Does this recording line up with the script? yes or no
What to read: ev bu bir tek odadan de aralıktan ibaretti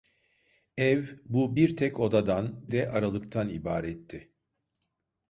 yes